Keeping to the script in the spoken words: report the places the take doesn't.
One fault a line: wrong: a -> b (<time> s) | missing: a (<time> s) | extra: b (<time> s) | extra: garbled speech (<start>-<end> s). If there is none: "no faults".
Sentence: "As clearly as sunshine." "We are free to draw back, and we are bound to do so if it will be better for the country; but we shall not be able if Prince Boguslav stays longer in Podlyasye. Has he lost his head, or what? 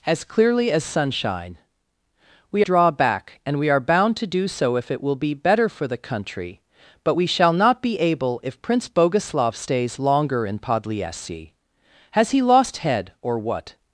missing: are free to (2.6 s)
missing: his (12.8 s)